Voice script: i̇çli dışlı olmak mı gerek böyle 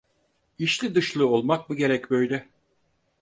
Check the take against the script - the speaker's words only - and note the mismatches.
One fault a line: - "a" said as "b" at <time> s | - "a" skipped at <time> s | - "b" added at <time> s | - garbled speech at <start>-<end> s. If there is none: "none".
none